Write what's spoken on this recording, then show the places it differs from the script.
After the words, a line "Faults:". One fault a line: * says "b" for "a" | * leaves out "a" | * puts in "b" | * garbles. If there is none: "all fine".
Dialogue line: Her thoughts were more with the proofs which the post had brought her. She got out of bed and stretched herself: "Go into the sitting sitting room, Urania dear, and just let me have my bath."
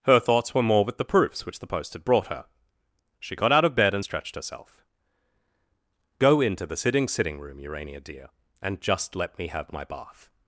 Her thoughts were more with the proofs which the post had brought her. She got out of bed and stretched herself: "Go into the sitting sitting room, Urania dear, and just let me have my bath."
Faults:
all fine